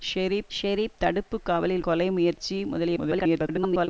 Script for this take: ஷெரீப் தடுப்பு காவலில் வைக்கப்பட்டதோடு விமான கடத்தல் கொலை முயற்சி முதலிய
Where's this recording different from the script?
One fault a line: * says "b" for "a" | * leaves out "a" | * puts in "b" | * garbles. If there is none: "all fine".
* puts in "ஷெரீப்"
* leaves out "வைக்கப்பட்டதோடு விமான கடத்தல்"
* garbles